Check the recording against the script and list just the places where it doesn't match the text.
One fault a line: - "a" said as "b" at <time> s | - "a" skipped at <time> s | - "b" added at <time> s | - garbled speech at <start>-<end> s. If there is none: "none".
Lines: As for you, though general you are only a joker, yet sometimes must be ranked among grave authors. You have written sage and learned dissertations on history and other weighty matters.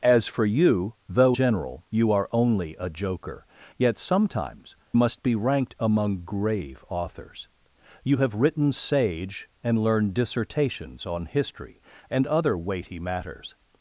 none